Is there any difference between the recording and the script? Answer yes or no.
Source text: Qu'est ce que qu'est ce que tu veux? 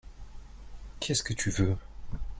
yes